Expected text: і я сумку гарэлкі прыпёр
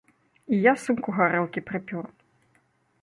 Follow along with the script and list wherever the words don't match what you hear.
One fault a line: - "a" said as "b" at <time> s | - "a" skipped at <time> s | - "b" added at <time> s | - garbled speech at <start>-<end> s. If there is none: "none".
none